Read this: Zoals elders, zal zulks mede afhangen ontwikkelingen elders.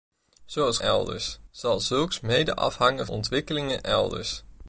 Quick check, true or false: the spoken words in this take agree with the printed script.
true